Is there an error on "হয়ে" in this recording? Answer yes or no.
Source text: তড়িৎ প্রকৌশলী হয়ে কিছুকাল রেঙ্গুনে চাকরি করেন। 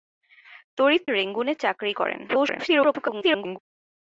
yes